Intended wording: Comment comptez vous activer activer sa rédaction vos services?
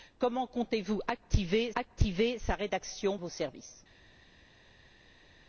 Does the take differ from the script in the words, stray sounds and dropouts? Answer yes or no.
no